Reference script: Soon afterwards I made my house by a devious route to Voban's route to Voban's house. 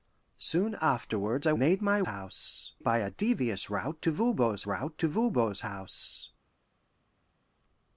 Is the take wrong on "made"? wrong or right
right